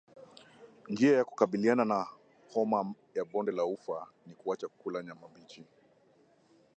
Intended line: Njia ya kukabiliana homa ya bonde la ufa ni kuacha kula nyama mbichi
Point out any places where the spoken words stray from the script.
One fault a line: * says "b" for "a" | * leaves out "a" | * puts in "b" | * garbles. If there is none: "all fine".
* puts in "na"